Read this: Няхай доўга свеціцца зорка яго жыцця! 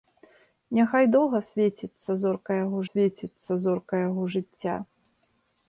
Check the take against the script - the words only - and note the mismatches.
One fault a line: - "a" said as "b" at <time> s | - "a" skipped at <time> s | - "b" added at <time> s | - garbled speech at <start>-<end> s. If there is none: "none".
- "свеціцца зорка яго" added at 2.9 s